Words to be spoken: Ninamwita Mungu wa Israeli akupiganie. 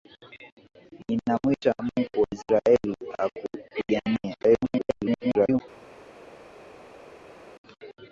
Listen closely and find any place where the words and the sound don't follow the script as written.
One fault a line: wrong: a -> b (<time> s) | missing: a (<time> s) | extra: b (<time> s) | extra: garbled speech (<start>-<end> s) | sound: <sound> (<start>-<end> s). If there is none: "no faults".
extra: garbled speech (4.4-5.6 s)